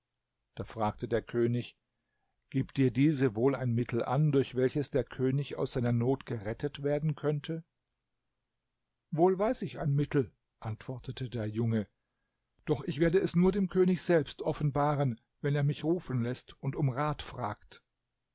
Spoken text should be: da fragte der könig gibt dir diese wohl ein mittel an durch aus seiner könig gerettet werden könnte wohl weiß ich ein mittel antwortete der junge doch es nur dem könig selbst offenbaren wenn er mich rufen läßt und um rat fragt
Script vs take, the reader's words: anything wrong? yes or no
yes